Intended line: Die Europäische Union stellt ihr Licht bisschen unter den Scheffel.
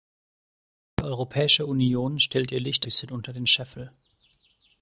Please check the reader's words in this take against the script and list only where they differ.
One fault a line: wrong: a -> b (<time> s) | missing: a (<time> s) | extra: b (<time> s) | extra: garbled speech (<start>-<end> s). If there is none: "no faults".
no faults